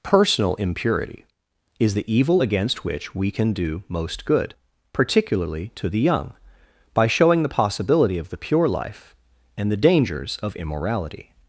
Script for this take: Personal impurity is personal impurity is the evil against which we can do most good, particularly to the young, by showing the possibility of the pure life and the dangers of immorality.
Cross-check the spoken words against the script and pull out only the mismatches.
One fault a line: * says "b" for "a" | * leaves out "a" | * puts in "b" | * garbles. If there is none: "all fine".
* leaves out "personal impurity is"